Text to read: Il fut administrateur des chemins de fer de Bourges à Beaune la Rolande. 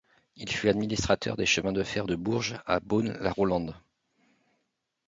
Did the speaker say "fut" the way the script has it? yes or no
yes